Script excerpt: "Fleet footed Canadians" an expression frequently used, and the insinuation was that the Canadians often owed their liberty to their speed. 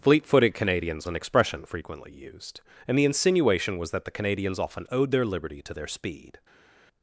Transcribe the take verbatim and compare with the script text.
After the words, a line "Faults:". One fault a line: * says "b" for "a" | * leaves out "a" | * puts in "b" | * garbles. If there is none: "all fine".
"Fleet footed Canadians" an expression frequently used, and the insinuation was that the Canadians often owed their liberty to their speed.
Faults:
all fine